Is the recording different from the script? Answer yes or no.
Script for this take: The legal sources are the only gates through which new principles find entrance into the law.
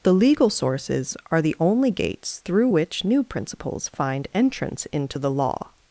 no